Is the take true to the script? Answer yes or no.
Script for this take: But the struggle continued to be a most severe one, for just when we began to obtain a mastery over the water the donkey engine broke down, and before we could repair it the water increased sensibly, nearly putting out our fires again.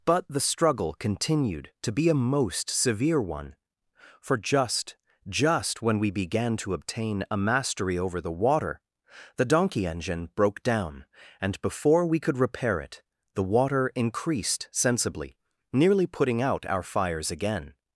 no